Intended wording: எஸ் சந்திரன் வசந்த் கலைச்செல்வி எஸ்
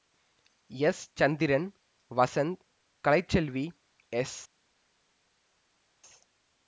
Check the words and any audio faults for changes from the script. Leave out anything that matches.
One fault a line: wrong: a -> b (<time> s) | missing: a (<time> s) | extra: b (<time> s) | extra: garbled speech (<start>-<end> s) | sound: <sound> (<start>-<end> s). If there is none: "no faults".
no faults